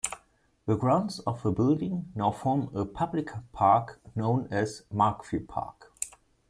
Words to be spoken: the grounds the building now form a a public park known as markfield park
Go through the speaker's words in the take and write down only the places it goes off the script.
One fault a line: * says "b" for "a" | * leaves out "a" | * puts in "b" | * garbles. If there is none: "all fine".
* puts in "of"
* leaves out "a"